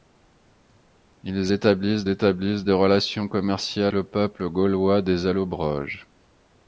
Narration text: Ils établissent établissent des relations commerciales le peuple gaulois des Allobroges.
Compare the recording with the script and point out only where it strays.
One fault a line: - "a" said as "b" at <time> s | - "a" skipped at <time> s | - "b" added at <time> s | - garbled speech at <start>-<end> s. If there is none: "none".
none